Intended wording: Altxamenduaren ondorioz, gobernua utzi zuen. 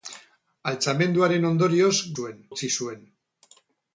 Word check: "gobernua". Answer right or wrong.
wrong